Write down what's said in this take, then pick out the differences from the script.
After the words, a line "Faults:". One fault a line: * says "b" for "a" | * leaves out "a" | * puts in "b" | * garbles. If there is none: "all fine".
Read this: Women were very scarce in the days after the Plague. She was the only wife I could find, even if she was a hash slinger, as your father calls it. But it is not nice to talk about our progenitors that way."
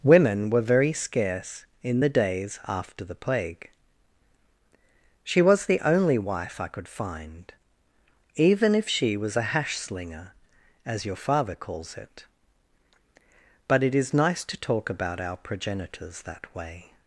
Women were very scarce in the days after the Plague. She was the only wife I could find, even if she was a hash slinger, as your father calls it. But it is nice to talk about our progenitors that way."
Faults:
* leaves out "not"